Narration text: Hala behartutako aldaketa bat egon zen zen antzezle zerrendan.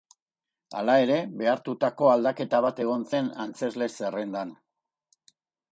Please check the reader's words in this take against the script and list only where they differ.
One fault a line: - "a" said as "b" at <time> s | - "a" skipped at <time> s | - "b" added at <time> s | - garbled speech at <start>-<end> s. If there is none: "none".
- "ere" added at 1.0 s
- "zen" skipped at 3.3 s